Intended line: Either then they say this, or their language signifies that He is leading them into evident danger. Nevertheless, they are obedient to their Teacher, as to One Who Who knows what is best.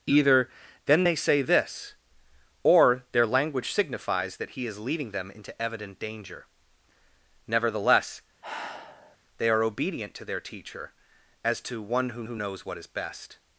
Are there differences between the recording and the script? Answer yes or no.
no